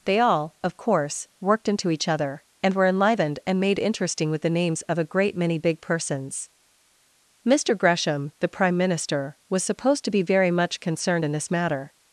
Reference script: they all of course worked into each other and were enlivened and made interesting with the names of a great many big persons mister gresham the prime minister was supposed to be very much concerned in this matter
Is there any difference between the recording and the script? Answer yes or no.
no